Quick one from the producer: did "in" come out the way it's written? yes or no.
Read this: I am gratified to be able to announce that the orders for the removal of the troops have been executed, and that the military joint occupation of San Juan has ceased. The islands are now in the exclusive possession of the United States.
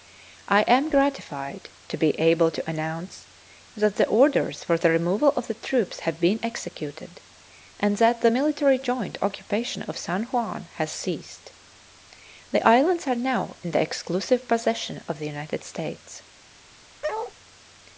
yes